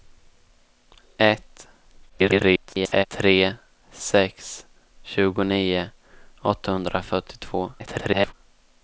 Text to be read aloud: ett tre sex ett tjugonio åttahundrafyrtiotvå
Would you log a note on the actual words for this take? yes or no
yes